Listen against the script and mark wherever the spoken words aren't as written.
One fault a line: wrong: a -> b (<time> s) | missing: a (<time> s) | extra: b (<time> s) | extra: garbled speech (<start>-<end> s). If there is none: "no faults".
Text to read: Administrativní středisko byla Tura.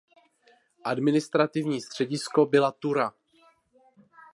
no faults